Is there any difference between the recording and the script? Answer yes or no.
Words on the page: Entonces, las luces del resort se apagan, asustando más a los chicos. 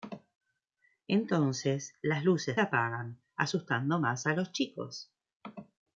yes